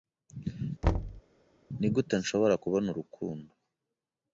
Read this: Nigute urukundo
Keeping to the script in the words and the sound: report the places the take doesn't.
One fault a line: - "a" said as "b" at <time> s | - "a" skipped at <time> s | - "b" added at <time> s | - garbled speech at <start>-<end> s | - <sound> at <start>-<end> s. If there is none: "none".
- thud at 0.8-1.2 s
- "nshobora kubona" added at 2.2 s